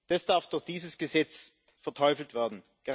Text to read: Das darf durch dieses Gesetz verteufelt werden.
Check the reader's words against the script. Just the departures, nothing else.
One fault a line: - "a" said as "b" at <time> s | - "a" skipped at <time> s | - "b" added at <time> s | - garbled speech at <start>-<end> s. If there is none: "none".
none